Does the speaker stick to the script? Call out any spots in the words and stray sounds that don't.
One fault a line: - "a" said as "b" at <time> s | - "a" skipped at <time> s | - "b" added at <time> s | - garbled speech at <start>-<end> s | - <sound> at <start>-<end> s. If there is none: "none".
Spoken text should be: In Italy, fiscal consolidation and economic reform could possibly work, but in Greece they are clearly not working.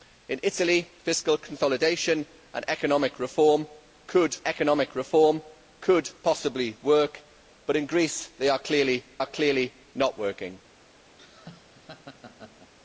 - "economic reform could" added at 4.4 s
- "are clearly" added at 9.2 s
- laugh at 11.2-12.7 s